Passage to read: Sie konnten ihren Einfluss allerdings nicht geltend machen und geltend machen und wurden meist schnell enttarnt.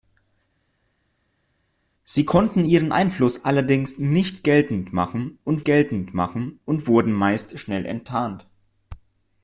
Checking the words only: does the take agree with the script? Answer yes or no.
yes